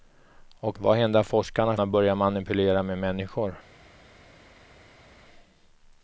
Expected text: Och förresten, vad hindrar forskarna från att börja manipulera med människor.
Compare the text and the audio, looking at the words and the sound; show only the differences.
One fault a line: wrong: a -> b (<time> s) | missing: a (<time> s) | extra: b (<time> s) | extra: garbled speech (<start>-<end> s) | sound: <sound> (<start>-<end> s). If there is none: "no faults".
missing: förresten (0.8 s)
missing: från (1.8 s)